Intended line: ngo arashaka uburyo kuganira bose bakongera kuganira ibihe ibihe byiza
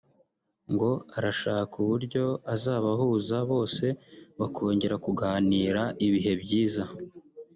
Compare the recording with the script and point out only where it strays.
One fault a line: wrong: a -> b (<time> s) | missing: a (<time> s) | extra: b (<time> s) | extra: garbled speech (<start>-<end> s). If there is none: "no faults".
wrong: kuganira -> azabahuza (2.5 s)
missing: ibihe (6.3 s)